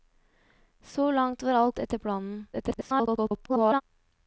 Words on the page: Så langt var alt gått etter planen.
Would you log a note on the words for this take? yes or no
yes